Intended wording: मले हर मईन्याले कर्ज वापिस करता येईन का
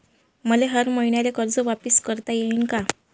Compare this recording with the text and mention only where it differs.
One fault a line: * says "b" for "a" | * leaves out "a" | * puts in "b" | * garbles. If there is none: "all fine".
all fine